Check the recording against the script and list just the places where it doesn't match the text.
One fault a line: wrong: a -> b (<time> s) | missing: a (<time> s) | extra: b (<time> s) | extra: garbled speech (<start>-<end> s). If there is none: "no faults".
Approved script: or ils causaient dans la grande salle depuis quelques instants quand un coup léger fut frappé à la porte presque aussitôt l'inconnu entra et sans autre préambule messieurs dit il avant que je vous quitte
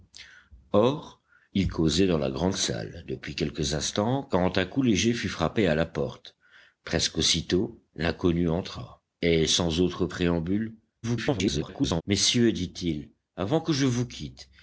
extra: garbled speech (11.0-12.0 s)